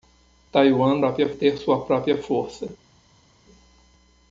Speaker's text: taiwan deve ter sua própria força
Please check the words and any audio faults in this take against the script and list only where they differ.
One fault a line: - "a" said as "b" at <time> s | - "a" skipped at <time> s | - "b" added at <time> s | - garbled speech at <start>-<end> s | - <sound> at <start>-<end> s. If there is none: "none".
- "deve" said as "própria" at 1.0 s